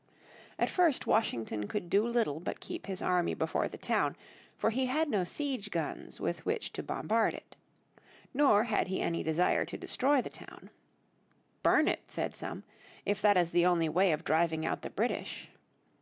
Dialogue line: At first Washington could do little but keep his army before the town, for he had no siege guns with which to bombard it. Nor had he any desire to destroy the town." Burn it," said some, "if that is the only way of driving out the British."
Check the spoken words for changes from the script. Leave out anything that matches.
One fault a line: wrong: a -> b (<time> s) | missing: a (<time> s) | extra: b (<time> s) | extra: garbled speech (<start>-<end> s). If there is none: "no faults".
no faults